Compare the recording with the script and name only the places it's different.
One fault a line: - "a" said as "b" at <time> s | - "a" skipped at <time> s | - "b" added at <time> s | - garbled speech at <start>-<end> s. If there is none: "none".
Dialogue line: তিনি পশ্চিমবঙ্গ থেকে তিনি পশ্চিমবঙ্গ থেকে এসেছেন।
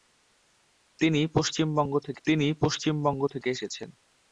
none